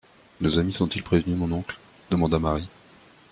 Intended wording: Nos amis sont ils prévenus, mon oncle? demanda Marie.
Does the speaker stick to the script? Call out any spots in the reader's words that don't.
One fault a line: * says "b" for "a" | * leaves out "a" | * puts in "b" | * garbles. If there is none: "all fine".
all fine